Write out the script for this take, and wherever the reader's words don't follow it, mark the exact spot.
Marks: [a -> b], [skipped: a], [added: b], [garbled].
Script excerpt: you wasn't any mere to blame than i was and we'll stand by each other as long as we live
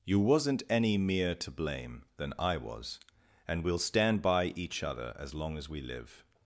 you wasn't any mere to blame than i was and we'll stand by each other as long as we live